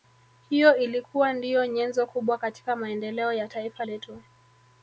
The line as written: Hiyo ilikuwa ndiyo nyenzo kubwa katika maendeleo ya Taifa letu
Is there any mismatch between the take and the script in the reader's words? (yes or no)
no